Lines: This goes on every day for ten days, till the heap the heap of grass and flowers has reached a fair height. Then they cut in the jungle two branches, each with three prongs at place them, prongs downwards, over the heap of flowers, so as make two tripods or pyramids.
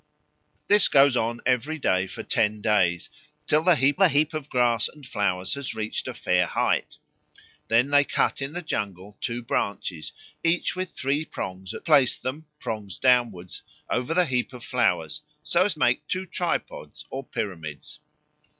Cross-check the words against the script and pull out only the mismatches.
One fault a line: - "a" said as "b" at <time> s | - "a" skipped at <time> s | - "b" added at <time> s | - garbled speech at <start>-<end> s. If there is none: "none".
none